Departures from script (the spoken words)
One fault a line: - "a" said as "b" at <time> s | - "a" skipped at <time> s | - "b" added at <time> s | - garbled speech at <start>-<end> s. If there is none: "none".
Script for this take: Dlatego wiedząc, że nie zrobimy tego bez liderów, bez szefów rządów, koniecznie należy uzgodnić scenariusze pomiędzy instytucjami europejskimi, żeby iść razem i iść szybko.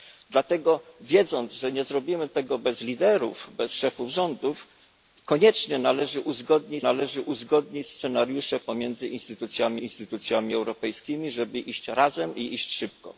- "należy uzgodnić" added at 6.8 s
- "instytucjami" added at 9.8 s